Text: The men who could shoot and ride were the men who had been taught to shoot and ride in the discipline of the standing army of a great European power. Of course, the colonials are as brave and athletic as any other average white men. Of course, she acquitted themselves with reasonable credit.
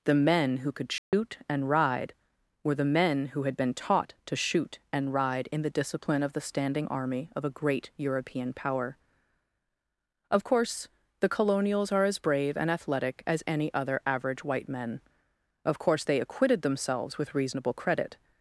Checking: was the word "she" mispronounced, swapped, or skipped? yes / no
yes